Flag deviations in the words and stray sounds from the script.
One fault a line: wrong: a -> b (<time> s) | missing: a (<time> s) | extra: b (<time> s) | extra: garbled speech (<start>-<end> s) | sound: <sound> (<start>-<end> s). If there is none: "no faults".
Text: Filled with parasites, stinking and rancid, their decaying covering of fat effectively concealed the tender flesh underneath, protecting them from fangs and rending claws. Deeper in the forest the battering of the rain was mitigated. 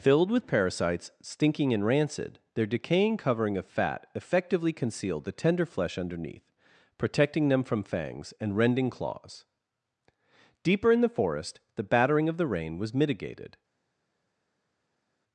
no faults